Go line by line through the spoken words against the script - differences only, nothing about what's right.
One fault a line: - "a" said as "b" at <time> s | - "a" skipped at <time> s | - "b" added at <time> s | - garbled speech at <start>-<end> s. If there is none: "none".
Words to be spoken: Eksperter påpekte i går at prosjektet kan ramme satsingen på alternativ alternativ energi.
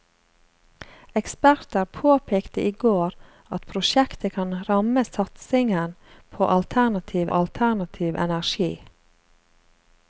none